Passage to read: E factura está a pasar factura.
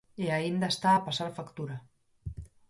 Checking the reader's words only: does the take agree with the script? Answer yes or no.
no